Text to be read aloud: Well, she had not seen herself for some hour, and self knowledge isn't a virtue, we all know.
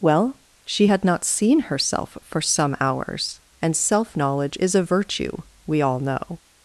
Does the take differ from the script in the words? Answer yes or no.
yes